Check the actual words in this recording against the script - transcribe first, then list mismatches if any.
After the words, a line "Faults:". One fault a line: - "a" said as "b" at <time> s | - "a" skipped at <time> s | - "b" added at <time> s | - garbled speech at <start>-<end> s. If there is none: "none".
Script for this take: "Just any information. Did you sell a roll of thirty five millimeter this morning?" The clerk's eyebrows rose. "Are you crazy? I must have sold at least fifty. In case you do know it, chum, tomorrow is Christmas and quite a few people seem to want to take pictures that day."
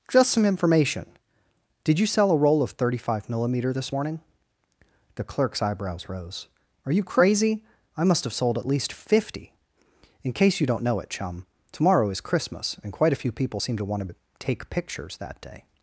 "Just some information. Did you sell a roll of thirty five millimeter this morning?" The clerk's eyebrows rose. "Are you crazy? I must have sold at least fifty. In case you don't know it, chum, tomorrow is Christmas and quite a few people seem to want to take pictures that day."
Faults:
- "any" said as "some" at 0.3 s
- "do" said as "don't" at 10.7 s